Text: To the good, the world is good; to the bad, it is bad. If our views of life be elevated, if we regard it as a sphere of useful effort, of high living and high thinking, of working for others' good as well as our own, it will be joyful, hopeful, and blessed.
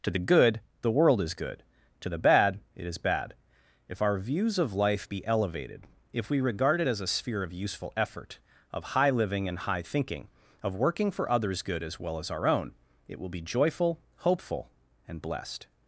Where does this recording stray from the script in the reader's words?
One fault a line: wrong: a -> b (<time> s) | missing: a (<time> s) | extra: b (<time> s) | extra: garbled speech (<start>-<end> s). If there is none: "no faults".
no faults